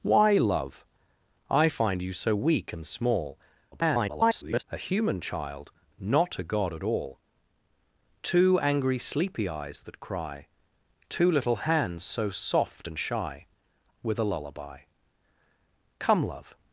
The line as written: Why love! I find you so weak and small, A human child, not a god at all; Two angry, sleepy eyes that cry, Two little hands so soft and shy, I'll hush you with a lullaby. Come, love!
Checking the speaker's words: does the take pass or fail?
fail